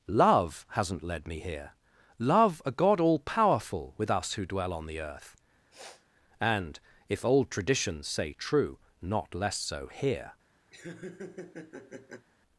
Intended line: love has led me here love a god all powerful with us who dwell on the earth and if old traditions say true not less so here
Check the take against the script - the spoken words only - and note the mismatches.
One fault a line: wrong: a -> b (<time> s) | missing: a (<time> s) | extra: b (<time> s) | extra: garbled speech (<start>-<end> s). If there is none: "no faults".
wrong: has -> hasn't (0.7 s)